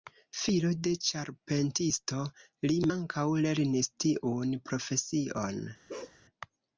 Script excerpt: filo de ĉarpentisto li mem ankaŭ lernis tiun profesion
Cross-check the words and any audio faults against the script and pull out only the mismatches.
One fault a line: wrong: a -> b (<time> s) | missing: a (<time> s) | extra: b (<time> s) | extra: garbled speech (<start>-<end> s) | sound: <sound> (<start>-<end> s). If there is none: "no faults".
missing: mem (2.8 s)
sound: bark (5.9-6.2 s)